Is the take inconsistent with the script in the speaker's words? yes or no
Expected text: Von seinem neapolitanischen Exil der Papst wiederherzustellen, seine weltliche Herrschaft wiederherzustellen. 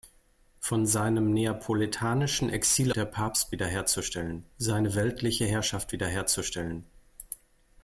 no